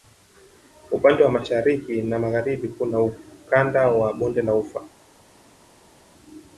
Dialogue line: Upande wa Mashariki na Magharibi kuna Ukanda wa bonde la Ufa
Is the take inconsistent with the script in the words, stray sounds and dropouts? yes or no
no